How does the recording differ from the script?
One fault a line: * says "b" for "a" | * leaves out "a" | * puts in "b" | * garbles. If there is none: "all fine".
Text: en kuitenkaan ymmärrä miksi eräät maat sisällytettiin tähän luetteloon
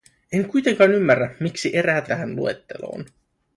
* leaves out "maat sisällytettiin"